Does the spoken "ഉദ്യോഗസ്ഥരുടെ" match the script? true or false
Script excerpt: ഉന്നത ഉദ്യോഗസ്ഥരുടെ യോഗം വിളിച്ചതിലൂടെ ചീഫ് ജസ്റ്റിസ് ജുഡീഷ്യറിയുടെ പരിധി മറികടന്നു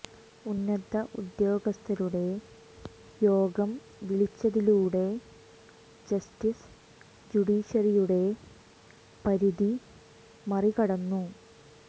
true